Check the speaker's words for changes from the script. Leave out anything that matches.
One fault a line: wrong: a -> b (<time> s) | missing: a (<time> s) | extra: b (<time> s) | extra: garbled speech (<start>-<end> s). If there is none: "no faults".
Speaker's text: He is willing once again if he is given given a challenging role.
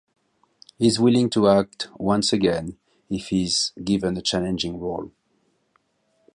extra: to act (1.3 s)
missing: given (4.1 s)